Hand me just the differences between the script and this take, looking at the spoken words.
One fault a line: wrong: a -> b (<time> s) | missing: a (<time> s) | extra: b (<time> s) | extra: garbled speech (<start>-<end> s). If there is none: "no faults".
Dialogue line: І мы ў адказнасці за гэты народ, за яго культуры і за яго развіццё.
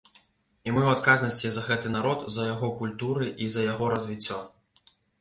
no faults